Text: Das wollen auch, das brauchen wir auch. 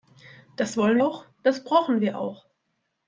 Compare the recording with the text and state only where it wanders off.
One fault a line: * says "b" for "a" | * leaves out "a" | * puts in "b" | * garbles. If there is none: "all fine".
all fine